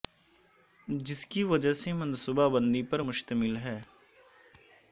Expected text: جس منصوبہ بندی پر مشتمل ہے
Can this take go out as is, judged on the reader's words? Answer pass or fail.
fail